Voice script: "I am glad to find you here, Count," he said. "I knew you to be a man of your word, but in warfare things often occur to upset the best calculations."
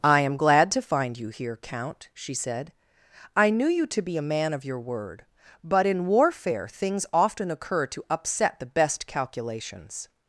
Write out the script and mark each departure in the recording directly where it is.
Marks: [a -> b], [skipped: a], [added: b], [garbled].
"I am glad to find you here, Count," [he -> she] said. "I knew you to be a man of your word, but in warfare things often occur to upset the best calculations."